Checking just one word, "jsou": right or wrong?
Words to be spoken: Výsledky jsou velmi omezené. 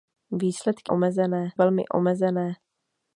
wrong